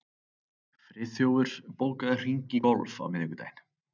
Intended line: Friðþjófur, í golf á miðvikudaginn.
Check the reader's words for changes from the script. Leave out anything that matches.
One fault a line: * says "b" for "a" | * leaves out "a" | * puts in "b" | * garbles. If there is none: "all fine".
* puts in "bókaðu hring"